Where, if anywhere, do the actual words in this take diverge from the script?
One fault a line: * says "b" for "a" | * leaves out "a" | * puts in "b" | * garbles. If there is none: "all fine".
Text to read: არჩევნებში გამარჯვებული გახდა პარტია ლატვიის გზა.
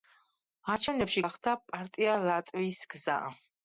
* leaves out "გამარჯვებული"